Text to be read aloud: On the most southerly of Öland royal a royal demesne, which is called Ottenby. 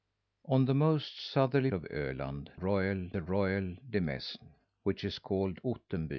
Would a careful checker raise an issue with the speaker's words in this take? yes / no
no